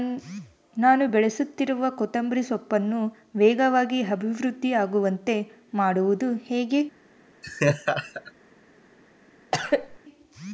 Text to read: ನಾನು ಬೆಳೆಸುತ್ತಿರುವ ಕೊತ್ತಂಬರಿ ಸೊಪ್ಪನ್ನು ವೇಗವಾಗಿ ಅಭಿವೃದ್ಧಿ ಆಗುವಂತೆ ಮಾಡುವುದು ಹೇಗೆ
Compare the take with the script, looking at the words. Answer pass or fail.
pass